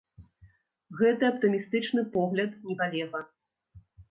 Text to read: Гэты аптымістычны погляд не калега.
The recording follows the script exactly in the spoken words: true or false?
true